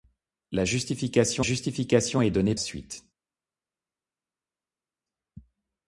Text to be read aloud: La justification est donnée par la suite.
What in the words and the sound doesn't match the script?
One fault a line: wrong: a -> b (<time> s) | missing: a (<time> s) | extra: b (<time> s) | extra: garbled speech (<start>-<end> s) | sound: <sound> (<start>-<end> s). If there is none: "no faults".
extra: justification (1.4 s)
missing: par la (2.5 s)